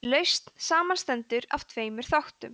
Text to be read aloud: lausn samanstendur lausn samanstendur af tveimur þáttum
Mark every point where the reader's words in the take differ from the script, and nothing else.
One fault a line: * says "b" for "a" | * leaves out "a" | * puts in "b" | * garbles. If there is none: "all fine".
* leaves out "lausn samanstendur"